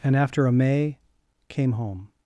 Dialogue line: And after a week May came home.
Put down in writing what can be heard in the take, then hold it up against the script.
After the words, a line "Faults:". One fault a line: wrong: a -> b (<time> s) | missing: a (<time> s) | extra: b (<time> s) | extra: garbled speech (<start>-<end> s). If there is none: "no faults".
And after a May came home.
Faults:
missing: week (0.5 s)